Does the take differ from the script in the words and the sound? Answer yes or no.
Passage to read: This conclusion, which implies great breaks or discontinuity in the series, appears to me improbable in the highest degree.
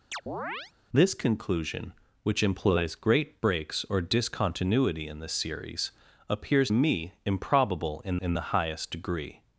yes